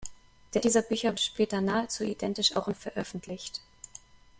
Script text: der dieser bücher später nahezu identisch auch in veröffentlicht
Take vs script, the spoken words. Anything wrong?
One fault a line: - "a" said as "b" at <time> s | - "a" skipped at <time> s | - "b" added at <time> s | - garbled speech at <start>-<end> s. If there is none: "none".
none